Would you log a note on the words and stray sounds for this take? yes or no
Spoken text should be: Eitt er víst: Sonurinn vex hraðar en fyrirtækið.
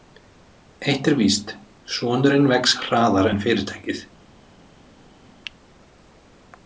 no